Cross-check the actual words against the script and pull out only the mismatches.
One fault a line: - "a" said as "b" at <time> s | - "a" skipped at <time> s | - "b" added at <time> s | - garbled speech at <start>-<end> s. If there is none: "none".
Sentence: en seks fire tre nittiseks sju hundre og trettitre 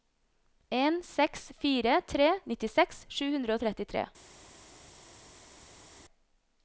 none